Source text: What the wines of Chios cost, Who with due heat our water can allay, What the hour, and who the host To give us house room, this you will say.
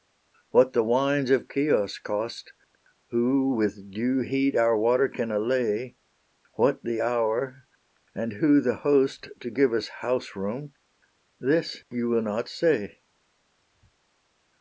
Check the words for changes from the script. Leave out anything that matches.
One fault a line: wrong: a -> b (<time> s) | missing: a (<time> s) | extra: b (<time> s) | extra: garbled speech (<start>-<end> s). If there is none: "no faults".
extra: not (12.2 s)